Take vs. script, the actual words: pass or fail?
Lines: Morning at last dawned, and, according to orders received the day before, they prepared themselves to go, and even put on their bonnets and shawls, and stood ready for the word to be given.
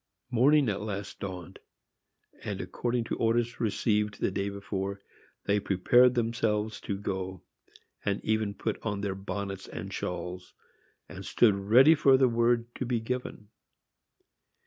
pass